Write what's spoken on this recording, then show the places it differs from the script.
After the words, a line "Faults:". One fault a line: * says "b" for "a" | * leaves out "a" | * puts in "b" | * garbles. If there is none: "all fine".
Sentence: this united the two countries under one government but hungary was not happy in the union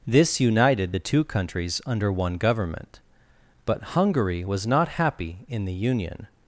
this united the two countries under one government but hungary was not happy in the union
Faults:
all fine